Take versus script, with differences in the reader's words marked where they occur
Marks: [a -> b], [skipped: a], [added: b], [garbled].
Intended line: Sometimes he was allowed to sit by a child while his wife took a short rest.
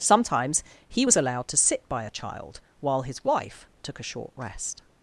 Sometimes he was allowed to sit by a child while his wife took a short rest.